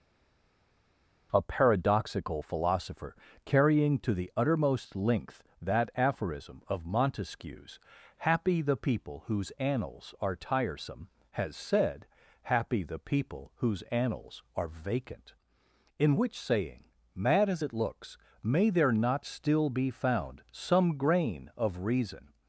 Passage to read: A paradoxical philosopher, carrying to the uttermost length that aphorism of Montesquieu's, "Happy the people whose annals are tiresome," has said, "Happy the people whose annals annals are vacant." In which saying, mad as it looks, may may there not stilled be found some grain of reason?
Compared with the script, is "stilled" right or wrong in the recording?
wrong